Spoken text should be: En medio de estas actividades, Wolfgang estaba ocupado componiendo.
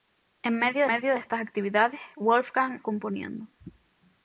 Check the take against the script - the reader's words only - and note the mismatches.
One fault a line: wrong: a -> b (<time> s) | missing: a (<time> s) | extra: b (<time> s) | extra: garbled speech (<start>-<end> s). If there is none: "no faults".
extra: medio (0.8 s)
missing: estaba ocupado (2.8 s)